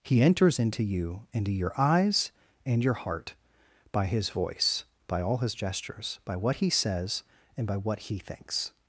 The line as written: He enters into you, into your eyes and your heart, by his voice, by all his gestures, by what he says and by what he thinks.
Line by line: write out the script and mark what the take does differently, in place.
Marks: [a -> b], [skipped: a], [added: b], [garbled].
He enters into you, into your eyes and your heart, by his voice, by all his gestures, by what he says and by what he thinks.